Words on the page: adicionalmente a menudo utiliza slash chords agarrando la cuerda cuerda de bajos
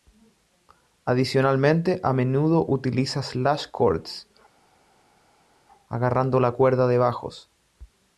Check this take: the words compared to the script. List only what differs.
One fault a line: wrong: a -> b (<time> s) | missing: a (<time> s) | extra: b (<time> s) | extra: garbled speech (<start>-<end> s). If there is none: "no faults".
missing: cuerda (6.9 s)